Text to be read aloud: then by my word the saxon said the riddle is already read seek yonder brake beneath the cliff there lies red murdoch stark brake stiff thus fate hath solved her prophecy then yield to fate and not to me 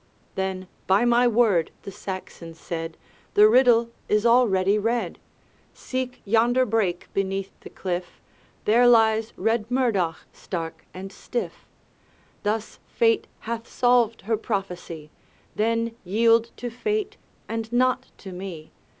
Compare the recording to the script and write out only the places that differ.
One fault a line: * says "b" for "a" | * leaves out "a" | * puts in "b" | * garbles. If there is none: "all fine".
* says "and" for "brake"